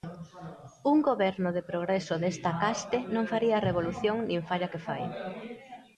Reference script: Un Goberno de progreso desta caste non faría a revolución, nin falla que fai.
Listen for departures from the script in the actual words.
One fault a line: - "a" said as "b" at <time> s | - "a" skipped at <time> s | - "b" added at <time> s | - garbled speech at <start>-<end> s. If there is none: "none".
none